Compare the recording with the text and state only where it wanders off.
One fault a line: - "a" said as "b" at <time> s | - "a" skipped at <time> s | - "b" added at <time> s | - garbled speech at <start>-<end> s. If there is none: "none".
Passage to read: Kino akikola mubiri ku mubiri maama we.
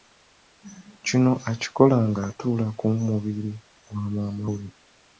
- "mubiri" said as "ng'atuula" at 2.1 s
- "gwa" added at 3.9 s